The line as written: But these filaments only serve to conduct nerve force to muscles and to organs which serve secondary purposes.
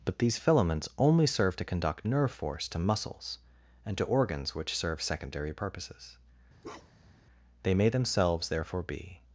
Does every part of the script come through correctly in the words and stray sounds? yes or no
no